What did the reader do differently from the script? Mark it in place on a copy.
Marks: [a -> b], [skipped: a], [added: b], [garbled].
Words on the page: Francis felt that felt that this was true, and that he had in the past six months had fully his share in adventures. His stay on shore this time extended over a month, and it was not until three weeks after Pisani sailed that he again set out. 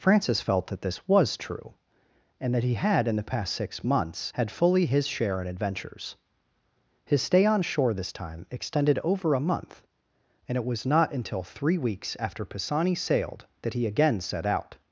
Francis felt that [skipped: felt that] this was true, and that he had in the past six months had fully his share in adventures. His stay on shore this time extended over a month, and it was not until three weeks after Pisani sailed that he again set out.